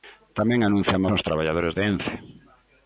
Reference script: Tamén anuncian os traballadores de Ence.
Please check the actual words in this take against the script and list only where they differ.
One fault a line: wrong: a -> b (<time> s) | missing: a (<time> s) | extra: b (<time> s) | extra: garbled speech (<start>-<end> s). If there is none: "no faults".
no faults